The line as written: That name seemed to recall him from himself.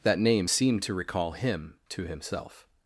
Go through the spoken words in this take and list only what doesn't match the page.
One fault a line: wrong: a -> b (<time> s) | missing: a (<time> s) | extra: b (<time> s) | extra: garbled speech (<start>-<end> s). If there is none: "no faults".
wrong: from -> to (1.9 s)